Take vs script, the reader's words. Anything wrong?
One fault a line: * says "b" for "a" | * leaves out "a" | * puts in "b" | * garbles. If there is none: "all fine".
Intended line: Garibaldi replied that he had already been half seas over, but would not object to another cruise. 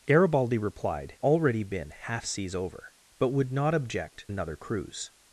* leaves out "that he had"
* leaves out "to"